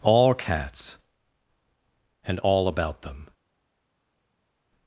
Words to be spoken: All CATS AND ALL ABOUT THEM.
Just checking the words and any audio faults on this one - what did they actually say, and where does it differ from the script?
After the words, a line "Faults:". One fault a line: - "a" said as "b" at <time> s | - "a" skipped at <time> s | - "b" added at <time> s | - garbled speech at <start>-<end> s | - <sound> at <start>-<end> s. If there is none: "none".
All CATS AND ALL ABOUT THEM.
Faults:
none